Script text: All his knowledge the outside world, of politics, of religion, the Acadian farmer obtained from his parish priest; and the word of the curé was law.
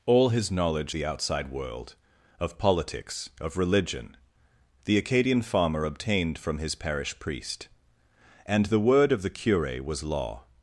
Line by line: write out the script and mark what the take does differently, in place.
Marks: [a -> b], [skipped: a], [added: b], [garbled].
All his knowledge the outside world, of politics, of religion, the Acadian farmer obtained from his parish priest; and the word of the curé was law.